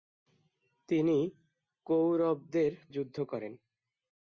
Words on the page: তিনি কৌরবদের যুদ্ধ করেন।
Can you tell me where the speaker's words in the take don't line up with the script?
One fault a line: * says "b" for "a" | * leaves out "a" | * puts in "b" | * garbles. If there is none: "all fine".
all fine